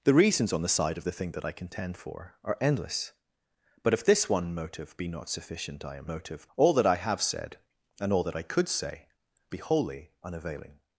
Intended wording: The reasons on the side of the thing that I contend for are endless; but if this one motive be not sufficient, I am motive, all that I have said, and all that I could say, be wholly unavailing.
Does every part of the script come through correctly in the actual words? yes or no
yes